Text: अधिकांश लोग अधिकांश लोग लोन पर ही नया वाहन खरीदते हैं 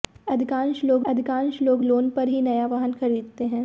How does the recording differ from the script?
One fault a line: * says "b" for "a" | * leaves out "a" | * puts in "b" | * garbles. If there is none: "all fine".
all fine